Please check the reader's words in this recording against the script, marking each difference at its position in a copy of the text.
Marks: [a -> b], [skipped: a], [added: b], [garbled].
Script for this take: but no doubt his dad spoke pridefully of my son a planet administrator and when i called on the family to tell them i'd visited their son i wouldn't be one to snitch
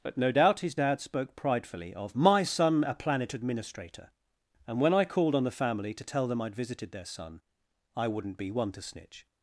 but no doubt his dad spoke pridefully of my son a planet administrator and when i called on the family to tell them i'd visited their son i wouldn't be one to snitch